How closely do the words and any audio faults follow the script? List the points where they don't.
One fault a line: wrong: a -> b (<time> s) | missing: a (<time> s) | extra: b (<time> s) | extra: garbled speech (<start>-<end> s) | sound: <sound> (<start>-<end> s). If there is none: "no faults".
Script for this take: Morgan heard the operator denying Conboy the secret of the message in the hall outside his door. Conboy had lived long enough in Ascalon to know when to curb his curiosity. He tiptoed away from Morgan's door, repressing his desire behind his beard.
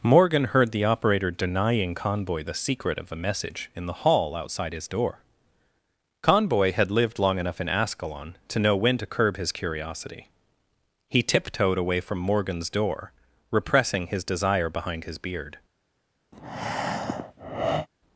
wrong: the -> a (3.1 s)
sound: breath (16.3-17.9 s)